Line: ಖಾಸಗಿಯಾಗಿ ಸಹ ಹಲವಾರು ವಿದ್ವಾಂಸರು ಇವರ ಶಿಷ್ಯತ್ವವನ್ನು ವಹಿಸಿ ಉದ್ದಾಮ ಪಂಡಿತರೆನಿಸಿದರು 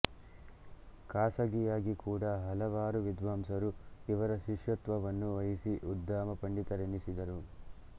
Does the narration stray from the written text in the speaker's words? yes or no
yes